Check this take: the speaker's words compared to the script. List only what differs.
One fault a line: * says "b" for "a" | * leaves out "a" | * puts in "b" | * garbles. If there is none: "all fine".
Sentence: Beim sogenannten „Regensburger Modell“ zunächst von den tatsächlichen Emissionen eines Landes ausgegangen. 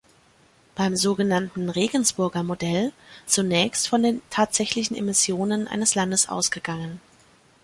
all fine